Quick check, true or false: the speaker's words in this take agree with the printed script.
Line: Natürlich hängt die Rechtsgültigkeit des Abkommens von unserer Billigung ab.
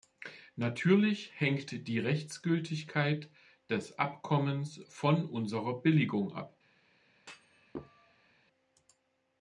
true